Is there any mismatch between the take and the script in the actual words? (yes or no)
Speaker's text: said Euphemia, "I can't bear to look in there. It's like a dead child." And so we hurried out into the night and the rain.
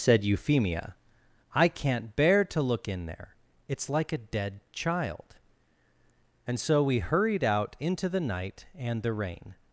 no